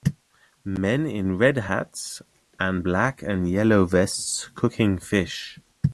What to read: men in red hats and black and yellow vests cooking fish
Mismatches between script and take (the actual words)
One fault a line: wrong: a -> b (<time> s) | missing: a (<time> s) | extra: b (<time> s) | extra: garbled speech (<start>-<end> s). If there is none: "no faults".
no faults